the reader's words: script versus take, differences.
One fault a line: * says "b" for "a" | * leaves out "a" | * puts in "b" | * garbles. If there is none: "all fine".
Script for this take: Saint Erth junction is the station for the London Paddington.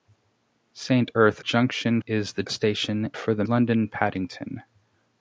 all fine